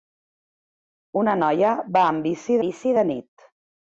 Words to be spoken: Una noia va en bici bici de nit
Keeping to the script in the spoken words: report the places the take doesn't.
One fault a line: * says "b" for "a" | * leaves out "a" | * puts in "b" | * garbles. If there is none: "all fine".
all fine